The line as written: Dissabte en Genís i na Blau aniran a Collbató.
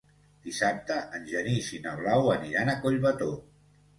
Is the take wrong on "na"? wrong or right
right